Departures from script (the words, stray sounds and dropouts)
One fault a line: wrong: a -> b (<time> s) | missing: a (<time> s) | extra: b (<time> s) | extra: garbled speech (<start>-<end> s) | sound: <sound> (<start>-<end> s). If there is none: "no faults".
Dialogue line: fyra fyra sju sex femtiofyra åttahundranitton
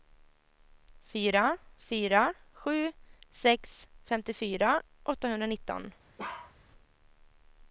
sound: bark (6.2-6.5 s)